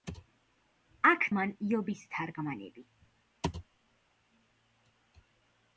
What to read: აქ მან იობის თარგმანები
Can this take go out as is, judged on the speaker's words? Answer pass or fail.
pass